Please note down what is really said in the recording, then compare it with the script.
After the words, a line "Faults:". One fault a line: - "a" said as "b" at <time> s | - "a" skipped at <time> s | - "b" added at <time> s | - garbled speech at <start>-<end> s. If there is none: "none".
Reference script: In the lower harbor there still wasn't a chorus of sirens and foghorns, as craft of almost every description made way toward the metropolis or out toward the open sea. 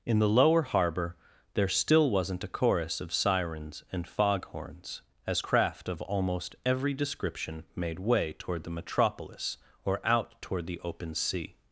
In the lower harbor there still wasn't a chorus of sirens and foghorns, as craft of almost every description made way toward the metropolis or out toward the open sea.
Faults:
none